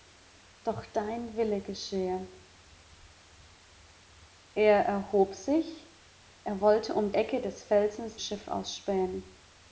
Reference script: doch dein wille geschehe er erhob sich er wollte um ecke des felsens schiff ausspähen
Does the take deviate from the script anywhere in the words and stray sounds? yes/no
no